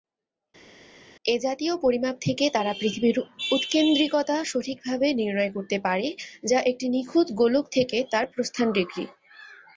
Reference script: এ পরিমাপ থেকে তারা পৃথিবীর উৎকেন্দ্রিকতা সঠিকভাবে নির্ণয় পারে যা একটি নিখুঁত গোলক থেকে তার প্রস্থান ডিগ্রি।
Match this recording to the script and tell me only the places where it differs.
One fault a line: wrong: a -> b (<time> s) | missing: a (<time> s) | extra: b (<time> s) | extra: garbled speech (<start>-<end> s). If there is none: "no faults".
extra: জাতীয় (1.4 s)
extra: করতে (5.5 s)